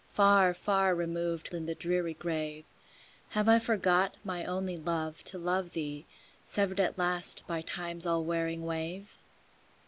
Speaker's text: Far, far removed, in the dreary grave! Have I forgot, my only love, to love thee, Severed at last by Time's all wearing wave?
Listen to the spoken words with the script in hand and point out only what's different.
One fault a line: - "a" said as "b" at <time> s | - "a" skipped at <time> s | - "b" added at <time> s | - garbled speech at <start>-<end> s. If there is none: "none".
none